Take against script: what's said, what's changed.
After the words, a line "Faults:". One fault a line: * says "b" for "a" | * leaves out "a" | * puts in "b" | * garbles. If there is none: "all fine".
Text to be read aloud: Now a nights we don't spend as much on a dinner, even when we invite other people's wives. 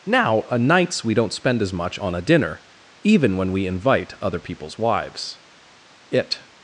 Now a nights we don't spend as much on a dinner, even when we invite other people's wives. "It
Faults:
* puts in "It"